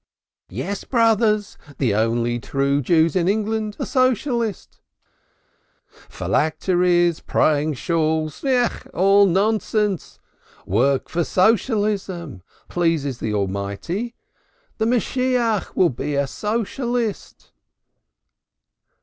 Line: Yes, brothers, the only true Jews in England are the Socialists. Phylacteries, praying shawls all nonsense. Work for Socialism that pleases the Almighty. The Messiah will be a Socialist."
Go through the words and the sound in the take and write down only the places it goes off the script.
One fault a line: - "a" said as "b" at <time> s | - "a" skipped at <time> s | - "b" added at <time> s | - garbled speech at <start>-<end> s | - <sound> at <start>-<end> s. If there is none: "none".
- "are" skipped at 3.8 s
- "that" skipped at 12.4 s